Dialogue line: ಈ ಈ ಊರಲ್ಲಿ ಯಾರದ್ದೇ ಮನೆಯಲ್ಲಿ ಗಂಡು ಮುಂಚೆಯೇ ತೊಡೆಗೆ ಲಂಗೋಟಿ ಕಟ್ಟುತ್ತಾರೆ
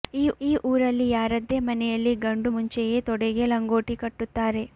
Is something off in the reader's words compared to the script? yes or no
no